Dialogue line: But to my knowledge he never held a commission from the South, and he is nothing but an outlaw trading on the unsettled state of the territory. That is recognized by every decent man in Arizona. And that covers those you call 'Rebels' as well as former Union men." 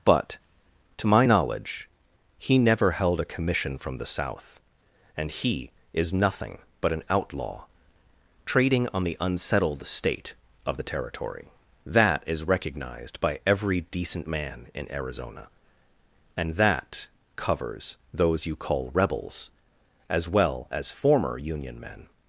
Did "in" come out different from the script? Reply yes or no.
no